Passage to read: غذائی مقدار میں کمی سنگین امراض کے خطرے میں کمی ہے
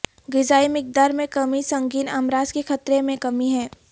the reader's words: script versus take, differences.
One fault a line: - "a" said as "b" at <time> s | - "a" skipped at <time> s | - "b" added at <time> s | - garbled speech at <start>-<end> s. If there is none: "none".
none